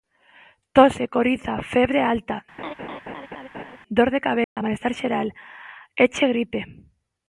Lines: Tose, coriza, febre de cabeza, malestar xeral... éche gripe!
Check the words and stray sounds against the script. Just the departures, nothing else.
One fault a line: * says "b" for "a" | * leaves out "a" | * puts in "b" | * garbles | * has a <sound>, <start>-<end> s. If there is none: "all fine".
* puts in "alta dor"
* has a laugh, 2.6-3.8 s
* has a dropout, 4.4-4.6 s